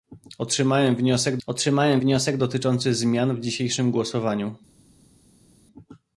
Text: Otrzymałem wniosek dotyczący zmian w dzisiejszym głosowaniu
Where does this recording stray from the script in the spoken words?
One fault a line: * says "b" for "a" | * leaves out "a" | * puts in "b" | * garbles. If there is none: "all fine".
* puts in "otrzymałem wniosek"